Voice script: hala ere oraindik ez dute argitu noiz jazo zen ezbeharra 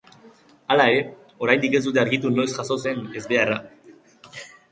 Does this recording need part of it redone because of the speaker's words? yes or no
no